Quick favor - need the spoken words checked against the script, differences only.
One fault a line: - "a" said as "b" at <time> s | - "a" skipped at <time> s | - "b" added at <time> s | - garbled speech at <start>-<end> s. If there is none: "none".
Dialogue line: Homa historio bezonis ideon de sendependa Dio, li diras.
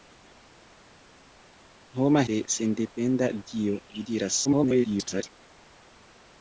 - "historio bezonis ideon" skipped at 2.2 s
- garbled speech at 4.4-5.2 s